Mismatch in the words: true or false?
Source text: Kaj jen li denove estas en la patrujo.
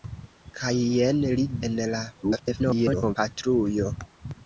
true